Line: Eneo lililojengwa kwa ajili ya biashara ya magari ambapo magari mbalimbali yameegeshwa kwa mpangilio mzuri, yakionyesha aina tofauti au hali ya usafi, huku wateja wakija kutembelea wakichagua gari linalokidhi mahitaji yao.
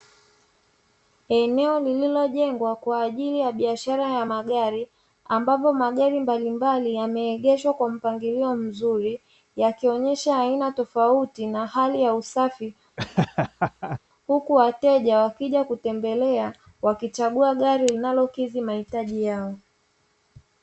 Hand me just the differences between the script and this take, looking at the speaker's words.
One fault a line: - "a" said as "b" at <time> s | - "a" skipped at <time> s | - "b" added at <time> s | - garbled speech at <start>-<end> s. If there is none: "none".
- "au" said as "na" at 11.5 s